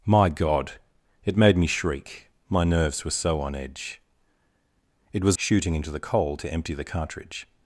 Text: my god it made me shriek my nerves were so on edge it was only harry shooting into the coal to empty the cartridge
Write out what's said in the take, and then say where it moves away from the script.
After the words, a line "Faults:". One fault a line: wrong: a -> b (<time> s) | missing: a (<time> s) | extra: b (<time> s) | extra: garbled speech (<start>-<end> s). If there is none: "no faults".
my god it made me shriek my nerves were so on edge it was shooting into the coal to empty the cartridge
Faults:
missing: only harry (5.4 s)